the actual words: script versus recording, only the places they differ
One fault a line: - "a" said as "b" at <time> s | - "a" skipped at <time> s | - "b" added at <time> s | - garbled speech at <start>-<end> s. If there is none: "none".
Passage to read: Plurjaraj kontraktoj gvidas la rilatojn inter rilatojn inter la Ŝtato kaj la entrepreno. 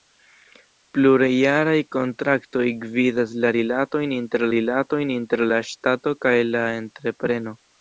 none